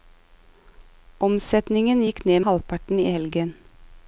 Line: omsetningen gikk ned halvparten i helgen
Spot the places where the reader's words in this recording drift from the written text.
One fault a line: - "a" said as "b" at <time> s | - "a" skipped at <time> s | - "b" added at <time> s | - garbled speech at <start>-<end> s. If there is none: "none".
none